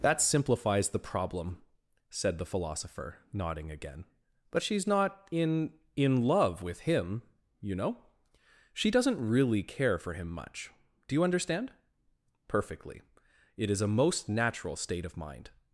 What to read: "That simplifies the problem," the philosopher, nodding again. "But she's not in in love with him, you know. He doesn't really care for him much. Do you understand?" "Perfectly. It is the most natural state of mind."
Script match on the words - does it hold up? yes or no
no